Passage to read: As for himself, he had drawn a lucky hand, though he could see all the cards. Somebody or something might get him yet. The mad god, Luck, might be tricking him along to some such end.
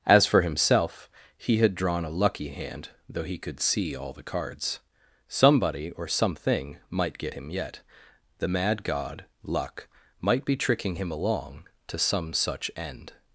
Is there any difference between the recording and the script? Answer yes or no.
no